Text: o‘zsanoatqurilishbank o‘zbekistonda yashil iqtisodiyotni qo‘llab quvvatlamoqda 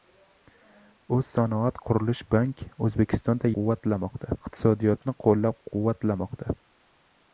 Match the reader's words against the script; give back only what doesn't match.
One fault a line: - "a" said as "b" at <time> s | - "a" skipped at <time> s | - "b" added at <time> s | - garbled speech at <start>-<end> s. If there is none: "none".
- "yashil" said as "quvvatlamoqda" at 3.6 s